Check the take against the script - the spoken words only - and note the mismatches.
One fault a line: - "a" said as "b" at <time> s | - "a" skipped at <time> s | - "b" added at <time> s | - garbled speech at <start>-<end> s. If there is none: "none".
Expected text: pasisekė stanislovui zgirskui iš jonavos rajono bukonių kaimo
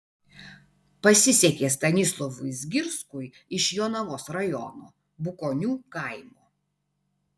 none